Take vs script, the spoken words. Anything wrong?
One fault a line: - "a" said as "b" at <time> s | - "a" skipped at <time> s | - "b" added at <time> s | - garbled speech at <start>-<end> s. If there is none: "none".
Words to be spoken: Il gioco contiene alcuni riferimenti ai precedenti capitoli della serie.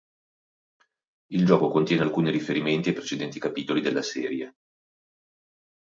none